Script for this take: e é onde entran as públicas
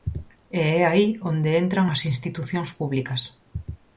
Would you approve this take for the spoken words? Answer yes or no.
no